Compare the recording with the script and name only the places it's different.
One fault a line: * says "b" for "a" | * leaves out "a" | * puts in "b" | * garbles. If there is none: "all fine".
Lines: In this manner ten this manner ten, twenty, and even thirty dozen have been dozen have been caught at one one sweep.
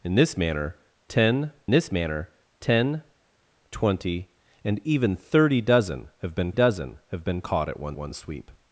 all fine